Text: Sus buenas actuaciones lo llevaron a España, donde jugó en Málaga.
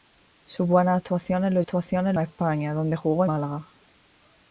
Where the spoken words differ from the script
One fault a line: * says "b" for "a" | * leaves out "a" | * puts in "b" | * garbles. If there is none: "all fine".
* says "actuaciones" for "llevaron"
* leaves out "en"